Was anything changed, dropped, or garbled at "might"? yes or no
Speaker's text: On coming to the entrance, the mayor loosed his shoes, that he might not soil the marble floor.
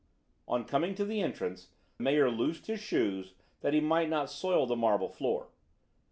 no